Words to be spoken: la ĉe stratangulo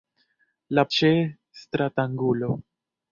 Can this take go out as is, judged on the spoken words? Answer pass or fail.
pass